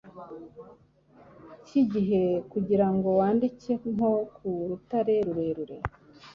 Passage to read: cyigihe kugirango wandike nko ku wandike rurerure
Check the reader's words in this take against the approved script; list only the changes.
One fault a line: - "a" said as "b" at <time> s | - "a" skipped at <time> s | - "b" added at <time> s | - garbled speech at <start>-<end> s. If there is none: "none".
- "wandike" said as "rutare" at 4.7 s